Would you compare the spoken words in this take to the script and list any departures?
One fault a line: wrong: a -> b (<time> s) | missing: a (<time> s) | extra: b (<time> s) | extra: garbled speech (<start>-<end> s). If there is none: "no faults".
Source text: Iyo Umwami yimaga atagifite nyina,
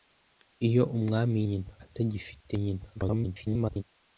wrong: yimaga -> nyina (1.5 s)
extra: garbled speech (2.9-3.8 s)